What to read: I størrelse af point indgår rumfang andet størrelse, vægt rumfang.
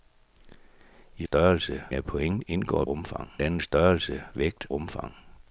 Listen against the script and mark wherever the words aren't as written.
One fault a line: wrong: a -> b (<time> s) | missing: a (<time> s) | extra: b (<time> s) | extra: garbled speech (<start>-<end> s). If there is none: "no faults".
no faults